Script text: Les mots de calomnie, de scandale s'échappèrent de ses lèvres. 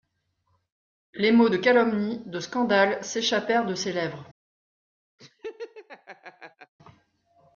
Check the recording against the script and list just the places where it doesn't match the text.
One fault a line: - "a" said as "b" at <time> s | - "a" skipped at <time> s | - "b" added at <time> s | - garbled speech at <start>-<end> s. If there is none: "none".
none